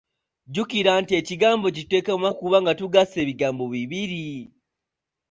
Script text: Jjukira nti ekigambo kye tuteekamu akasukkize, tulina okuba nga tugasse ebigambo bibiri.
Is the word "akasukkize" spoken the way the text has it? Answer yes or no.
no